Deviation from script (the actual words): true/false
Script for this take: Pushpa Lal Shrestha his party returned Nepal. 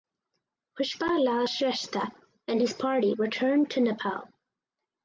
true